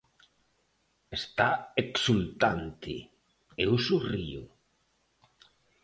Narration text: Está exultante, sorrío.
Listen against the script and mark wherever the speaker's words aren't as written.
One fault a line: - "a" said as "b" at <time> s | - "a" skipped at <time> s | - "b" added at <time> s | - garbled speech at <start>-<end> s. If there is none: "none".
- "eu" added at 3.6 s